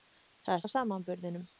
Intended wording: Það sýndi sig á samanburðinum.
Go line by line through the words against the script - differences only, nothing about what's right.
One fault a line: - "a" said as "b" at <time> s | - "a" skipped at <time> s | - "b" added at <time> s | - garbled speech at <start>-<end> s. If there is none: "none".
- "sýndi sig" skipped at 0.6 s